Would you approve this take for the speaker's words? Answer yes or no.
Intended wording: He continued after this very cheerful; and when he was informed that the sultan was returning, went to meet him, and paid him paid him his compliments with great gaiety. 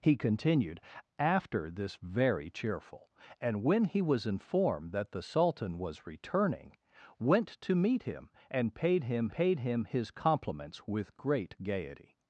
yes